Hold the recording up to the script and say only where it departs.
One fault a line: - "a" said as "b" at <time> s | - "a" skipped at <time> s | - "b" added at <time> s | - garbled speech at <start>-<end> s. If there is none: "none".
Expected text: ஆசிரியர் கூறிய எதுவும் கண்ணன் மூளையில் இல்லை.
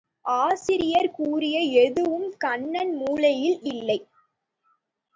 none